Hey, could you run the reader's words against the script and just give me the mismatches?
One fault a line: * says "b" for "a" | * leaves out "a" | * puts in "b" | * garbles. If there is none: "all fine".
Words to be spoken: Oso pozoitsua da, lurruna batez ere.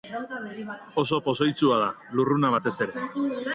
all fine